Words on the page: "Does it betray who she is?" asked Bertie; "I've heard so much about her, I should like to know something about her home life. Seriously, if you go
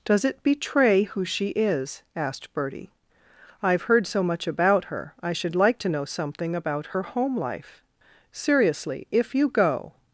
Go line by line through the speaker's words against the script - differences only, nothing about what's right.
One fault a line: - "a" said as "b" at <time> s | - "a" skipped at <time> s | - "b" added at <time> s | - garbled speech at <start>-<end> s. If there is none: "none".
none